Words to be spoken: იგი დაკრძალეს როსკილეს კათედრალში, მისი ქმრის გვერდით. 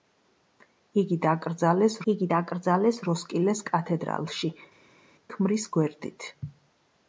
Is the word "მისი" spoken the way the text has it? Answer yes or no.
no